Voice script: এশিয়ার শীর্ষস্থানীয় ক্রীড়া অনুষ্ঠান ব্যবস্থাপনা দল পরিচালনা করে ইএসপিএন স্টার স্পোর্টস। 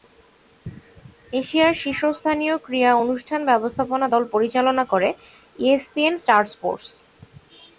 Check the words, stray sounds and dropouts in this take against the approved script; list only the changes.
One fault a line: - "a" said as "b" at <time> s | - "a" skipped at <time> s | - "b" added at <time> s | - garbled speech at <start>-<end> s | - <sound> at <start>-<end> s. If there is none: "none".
none